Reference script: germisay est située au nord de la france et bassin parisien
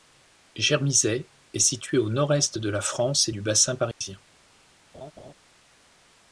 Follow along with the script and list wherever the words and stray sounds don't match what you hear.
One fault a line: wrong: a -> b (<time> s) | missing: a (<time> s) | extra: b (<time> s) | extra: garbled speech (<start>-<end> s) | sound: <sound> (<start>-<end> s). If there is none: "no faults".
extra: est (2.3 s)
extra: du (3.3 s)
sound: dropout (3.9-4.0 s)
sound: laugh (4.9-5.3 s)